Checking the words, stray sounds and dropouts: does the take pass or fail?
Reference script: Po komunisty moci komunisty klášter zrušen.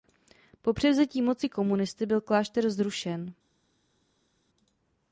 fail